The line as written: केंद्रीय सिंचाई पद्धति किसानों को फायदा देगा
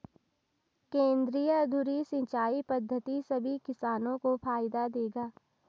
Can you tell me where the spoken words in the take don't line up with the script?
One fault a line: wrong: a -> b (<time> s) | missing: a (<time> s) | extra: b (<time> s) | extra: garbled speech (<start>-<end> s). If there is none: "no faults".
extra: धुरी (1.6 s)
extra: सभी (3.3 s)